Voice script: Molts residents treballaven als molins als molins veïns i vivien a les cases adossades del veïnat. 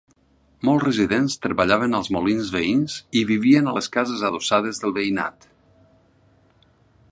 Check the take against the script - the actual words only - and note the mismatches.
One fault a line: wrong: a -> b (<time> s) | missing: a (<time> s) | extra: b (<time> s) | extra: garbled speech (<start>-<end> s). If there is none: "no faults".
missing: als molins (2.5 s)